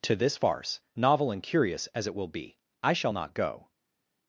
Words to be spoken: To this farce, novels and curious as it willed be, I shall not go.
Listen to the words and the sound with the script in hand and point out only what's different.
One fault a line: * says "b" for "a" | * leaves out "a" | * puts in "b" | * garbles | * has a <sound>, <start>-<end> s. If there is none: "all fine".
* says "novel" for "novels"
* says "will" for "willed"